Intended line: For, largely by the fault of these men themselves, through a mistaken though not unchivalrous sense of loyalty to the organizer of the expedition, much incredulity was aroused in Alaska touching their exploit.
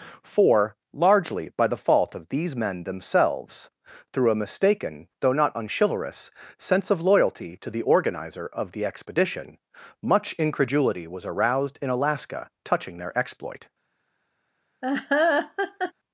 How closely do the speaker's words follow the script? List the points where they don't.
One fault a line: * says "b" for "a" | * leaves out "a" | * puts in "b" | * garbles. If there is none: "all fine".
all fine